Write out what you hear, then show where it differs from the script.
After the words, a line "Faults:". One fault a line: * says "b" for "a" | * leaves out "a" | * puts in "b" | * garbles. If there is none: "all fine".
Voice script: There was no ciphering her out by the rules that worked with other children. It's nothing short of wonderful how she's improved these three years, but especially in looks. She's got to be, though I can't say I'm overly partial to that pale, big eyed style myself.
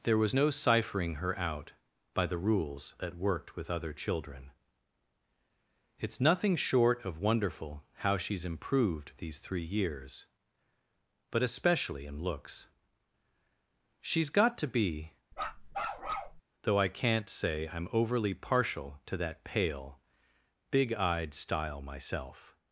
There was no ciphering her out by the rules that worked with other children. It's nothing short of wonderful how she's improved these three years, but especially in looks. She's got to be, though I can't say I'm overly partial to that pale, big eyed style myself.
Faults:
all fine